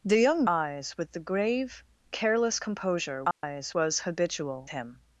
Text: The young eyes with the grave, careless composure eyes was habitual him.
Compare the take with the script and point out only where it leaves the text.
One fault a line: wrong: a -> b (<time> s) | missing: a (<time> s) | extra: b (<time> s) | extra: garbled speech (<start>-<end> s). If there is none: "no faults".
no faults